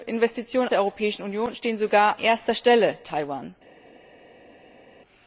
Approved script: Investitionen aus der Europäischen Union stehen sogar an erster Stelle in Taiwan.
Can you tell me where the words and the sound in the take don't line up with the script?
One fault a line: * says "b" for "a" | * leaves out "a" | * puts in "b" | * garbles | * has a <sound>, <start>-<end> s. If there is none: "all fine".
* leaves out "aus"
* leaves out "an"
* leaves out "in"